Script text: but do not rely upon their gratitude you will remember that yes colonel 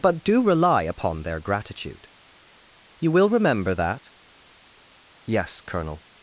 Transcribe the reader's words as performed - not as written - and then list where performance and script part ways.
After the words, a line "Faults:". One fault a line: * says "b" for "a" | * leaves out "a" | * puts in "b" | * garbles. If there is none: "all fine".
but do rely upon their gratitude you will remember that yes colonel
Faults:
* leaves out "not"